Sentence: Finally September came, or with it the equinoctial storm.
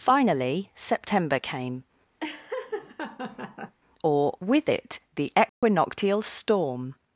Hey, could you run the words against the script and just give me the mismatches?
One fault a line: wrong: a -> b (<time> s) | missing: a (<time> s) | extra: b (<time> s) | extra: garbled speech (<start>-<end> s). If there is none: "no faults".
no faults